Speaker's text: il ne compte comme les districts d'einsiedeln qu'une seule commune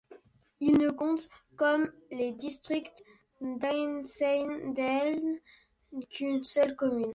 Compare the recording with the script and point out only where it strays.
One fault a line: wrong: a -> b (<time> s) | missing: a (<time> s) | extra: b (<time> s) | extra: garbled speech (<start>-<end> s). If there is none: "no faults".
no faults